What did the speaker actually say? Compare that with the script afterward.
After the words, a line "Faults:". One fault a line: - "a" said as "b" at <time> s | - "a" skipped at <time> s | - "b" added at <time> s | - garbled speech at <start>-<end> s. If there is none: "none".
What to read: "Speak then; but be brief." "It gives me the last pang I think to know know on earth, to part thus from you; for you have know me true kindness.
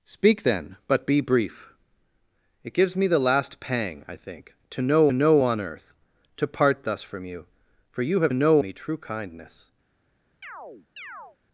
"Speak then; but be brief." "It gives me the last pang I think to know know on earth, to part thus from you; for you have know me true kindness.
Faults:
none